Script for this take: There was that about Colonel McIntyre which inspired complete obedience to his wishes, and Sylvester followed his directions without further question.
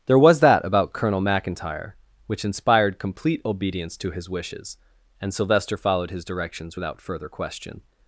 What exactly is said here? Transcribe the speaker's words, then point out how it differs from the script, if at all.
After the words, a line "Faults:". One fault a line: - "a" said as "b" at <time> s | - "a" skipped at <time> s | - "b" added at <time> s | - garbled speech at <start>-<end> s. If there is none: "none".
There was that about Colonel McIntyre which inspired complete obedience to his wishes, and Sylvester followed his directions without further question.
Faults:
none